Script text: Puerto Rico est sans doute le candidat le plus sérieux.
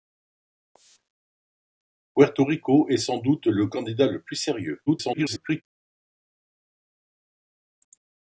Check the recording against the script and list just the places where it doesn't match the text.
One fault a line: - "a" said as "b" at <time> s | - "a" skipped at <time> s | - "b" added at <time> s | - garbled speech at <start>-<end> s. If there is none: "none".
- garbled speech at 4.9-5.6 s